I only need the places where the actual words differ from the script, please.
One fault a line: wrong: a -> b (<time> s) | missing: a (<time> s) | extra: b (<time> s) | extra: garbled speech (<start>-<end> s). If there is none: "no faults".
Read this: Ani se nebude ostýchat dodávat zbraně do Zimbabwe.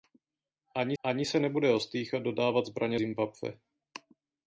extra: ani (1.0 s)
missing: do (3.0 s)